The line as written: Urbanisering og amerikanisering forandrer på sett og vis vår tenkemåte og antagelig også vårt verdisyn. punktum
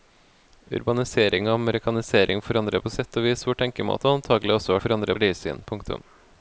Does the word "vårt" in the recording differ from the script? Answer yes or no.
yes